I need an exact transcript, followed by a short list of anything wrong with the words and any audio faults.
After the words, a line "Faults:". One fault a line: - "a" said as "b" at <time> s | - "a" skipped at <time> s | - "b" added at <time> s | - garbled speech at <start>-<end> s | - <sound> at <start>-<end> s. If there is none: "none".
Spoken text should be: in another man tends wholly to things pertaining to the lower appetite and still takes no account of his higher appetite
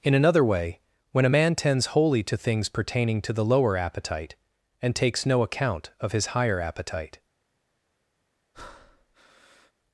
in another way when a man tends wholly to things pertaining to the lower appetite and takes no account of his higher appetite
Faults:
- "way when a" added at 0.4 s
- "still" skipped at 5.0 s
- breath at 8.5-9.7 s